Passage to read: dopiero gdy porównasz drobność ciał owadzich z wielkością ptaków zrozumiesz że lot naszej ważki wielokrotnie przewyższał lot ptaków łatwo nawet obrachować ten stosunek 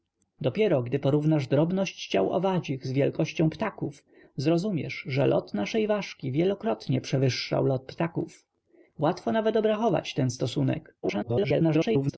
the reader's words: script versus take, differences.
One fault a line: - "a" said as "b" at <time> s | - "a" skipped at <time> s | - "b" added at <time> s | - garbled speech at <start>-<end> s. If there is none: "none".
- garbled speech at 11.0-12.2 s